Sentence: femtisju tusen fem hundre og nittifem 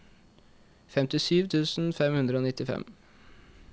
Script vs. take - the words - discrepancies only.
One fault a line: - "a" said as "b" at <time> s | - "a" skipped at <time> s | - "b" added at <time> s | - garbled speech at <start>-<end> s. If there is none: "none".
none